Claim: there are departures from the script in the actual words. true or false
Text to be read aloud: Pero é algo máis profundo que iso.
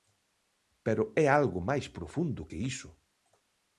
false